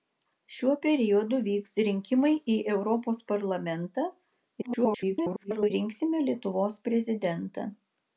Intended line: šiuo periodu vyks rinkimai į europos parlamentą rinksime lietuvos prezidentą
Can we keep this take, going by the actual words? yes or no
no